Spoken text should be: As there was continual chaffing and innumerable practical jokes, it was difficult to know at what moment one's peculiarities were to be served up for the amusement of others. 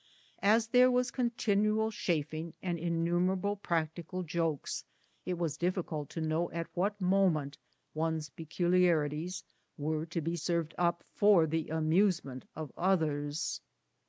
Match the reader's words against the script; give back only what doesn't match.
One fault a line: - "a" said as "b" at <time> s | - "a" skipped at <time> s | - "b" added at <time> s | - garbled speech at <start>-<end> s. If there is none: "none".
none